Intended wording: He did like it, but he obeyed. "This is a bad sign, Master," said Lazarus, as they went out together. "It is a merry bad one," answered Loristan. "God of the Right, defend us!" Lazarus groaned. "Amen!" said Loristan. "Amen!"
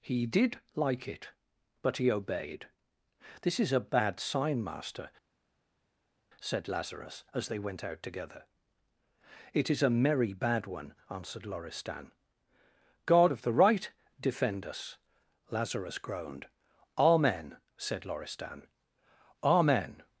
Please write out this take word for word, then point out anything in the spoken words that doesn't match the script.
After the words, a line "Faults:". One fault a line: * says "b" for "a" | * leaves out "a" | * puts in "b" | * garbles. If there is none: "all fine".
He did like it, but he obeyed. "This is a bad sign, Master," said Lazarus, as they went out together. "It is a merry bad one," answered Loristan. "God of the Right, defend us!" Lazarus groaned. "Amen!" said Loristan. "Amen!"
Faults:
all fine